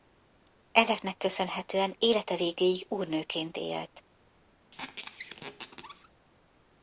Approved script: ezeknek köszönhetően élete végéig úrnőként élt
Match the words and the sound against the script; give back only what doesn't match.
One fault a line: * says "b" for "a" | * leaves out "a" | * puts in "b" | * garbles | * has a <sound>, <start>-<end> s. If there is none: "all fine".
* has a squeak, 4.7-6.1 s